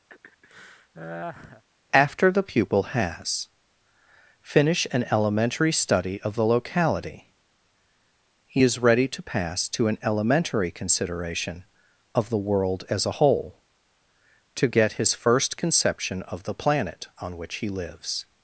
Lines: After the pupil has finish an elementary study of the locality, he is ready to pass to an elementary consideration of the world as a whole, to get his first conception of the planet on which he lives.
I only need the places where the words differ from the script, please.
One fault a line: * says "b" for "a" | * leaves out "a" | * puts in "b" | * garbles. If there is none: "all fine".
all fine